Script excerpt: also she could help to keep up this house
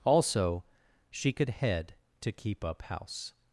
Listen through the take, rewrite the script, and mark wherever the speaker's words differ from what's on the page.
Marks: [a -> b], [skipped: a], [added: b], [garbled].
also she could [help -> head] to keep up [skipped: this] house